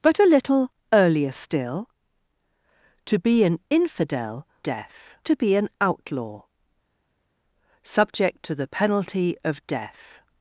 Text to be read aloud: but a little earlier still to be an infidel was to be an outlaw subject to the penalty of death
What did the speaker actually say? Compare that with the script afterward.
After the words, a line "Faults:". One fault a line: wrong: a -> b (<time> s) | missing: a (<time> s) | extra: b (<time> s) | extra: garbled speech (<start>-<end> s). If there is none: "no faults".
but a little earlier still to be an infidel death to be an outlaw subject to the penalty of death
Faults:
wrong: was -> death (4.6 s)